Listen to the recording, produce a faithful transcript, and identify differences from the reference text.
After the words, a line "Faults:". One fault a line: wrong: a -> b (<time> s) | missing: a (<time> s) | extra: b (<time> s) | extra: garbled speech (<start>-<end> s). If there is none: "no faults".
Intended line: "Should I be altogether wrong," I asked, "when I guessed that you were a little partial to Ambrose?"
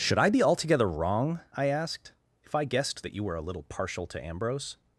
"Should I be altogether wrong," I asked, "if I guessed that you were a little partial to Ambrose?"
Faults:
wrong: when -> if (2.4 s)